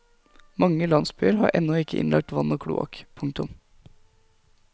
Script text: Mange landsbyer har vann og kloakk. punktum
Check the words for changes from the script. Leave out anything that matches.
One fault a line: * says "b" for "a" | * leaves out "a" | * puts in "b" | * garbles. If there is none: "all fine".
* puts in "ennå ikke innlagt"